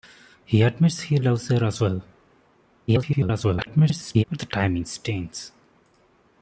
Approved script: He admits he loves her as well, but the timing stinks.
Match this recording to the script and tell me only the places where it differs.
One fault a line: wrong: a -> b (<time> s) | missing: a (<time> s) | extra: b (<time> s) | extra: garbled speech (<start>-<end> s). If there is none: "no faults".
extra: garbled speech (2.9-4.2 s)